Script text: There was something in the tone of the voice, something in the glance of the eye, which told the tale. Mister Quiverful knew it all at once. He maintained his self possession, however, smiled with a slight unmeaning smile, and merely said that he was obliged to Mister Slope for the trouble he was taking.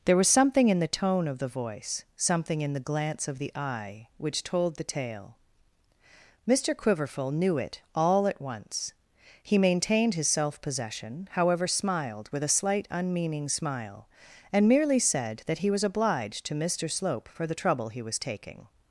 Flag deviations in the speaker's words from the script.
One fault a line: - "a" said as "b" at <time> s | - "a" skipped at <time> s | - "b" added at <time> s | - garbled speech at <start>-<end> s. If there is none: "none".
none